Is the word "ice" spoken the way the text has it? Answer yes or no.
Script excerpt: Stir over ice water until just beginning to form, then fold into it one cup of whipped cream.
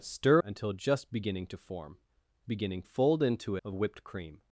no